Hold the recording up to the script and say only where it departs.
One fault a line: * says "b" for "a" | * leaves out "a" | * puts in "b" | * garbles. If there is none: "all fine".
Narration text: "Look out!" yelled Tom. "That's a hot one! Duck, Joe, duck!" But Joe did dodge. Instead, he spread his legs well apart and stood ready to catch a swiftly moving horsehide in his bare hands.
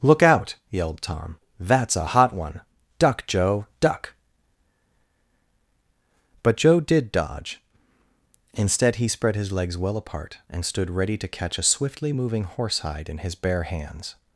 all fine